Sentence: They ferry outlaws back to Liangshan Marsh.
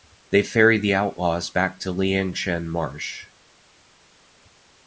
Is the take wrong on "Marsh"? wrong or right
right